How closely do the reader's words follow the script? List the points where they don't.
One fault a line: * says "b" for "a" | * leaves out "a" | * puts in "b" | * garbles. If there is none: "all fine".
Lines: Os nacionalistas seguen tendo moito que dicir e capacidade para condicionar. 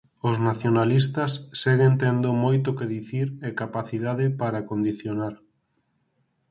all fine